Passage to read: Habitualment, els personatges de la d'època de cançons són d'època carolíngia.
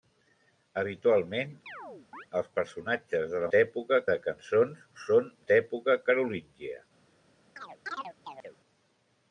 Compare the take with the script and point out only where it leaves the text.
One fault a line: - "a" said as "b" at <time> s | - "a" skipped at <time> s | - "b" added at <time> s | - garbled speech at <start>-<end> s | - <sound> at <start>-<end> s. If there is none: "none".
- chirp at 1.7-2.3 s
- chirp at 7.6-8.6 s